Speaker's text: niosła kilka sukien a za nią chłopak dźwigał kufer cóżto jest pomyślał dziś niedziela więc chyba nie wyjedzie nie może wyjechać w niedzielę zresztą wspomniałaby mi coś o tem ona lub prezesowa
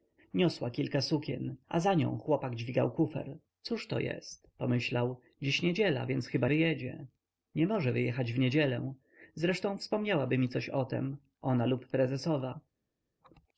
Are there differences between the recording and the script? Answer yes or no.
yes